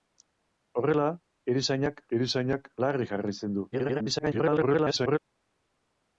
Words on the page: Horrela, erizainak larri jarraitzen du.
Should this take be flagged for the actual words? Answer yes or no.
yes